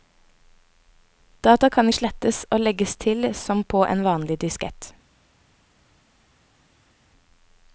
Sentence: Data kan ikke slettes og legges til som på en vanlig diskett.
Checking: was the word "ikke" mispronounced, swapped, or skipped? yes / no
yes